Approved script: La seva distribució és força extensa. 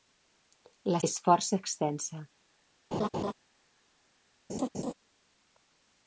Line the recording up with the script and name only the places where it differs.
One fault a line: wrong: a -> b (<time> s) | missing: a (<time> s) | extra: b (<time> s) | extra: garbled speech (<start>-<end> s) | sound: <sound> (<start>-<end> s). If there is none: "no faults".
missing: seva distribució (1.0 s)
sound: laugh (2.9-3.3 s)
sound: laugh (4.5-4.9 s)